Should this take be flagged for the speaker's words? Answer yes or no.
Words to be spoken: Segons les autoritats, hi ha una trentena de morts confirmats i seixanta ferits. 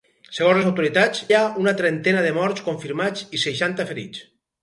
no